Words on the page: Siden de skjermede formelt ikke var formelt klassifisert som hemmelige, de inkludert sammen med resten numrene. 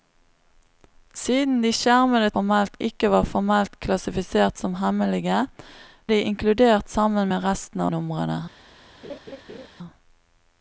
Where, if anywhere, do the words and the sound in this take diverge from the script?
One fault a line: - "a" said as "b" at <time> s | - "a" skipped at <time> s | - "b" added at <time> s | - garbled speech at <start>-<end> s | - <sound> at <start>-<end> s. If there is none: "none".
- laugh at 9.0-9.7 s